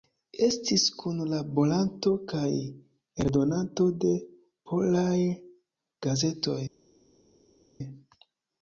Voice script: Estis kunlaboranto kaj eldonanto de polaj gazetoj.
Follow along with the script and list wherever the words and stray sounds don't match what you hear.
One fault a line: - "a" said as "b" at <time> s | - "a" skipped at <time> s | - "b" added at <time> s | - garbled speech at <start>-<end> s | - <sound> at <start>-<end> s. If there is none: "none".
none